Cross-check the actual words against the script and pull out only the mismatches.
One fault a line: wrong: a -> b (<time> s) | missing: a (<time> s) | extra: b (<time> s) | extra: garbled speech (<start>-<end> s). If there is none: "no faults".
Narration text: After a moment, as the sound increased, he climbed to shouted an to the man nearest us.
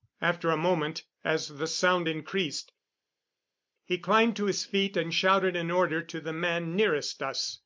extra: his feet and (4.5 s)
extra: order (5.7 s)